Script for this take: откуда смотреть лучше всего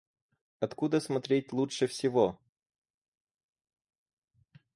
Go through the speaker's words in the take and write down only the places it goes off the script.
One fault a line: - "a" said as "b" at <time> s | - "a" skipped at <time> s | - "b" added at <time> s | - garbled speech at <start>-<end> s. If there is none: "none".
none